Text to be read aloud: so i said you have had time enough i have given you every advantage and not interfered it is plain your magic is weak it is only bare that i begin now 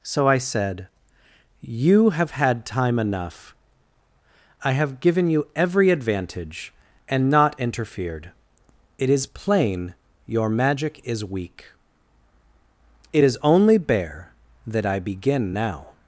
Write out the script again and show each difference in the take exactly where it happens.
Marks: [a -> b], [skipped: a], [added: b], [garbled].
so i said you have had time enough i have given you every advantage and not interfered it is plain your magic is weak it is only bare that i begin now